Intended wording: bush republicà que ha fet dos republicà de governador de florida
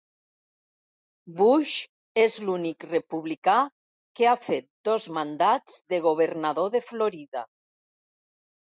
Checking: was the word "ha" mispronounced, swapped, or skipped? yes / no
no